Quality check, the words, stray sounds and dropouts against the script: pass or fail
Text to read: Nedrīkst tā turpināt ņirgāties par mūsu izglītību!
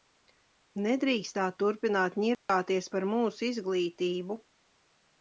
fail